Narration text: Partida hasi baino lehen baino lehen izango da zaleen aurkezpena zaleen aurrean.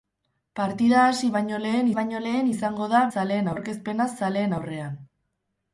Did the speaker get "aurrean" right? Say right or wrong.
right